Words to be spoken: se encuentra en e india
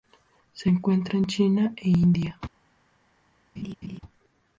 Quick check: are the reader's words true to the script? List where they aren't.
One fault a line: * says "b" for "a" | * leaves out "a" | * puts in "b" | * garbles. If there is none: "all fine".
* puts in "china"